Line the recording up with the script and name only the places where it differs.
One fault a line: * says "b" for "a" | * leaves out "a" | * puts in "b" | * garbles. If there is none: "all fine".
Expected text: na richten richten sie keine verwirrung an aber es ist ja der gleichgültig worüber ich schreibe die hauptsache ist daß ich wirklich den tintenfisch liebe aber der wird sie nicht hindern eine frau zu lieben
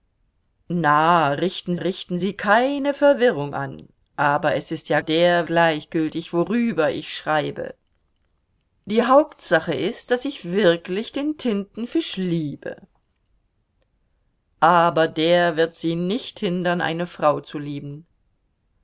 all fine